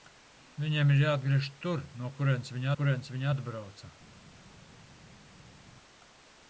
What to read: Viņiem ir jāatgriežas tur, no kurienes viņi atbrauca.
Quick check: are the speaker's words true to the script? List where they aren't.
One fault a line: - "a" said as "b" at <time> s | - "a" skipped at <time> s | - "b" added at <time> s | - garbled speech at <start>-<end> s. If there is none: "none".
- "kurienes viņi" added at 2.8 s